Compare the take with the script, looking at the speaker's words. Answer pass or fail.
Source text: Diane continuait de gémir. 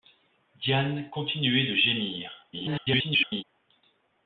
fail